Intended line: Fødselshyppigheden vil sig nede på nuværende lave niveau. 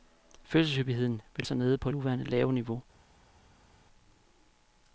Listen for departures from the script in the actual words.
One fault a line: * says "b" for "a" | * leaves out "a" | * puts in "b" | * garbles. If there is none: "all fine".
all fine